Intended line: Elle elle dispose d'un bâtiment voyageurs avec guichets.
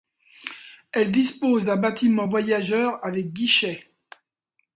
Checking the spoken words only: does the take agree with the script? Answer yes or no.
no